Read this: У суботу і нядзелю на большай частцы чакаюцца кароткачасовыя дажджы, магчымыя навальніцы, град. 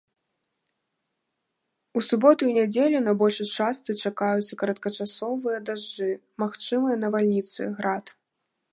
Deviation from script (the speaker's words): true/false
false